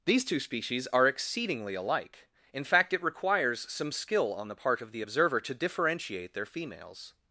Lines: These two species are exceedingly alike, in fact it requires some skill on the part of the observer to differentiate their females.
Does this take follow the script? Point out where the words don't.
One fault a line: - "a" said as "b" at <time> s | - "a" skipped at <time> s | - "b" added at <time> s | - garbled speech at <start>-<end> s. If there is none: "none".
none